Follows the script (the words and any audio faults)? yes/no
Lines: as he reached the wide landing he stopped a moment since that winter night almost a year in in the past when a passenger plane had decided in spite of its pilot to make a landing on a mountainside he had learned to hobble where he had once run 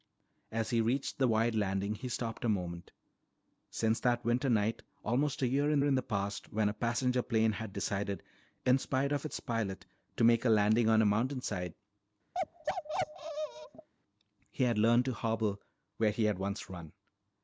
no